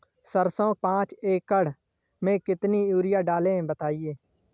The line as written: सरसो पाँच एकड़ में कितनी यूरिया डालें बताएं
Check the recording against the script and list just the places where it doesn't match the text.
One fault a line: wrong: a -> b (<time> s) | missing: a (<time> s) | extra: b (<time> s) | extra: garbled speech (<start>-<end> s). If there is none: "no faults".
no faults